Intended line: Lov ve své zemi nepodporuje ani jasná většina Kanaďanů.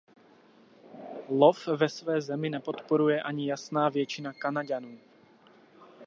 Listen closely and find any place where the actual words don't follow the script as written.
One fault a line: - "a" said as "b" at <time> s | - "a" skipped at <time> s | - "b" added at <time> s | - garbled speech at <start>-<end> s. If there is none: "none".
none